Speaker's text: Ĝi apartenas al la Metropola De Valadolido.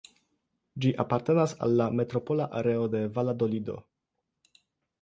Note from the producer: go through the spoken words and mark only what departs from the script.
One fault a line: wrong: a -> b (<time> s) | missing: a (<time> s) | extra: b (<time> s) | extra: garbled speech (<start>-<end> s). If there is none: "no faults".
extra: Areo (2.6 s)